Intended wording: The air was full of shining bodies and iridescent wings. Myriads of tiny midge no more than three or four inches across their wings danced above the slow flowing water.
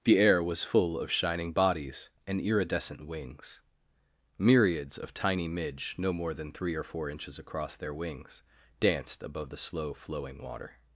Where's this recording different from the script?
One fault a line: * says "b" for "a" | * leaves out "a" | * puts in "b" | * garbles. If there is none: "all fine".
all fine